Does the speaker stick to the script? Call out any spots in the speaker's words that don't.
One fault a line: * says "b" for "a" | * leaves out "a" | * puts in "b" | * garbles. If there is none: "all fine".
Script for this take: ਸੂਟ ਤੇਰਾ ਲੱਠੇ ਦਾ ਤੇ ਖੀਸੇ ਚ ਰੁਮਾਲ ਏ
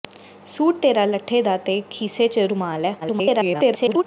* garbles